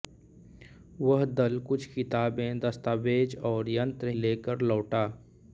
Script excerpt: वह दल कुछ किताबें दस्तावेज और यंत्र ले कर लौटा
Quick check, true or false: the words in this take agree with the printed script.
true